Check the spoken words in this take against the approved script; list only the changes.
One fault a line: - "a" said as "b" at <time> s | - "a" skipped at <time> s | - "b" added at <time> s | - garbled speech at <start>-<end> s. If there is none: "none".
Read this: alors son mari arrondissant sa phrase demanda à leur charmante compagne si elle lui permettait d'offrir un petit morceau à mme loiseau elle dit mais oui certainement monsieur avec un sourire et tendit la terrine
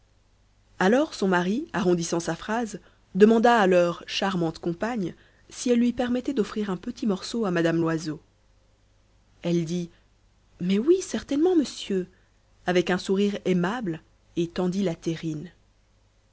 - "aimable" added at 13.4 s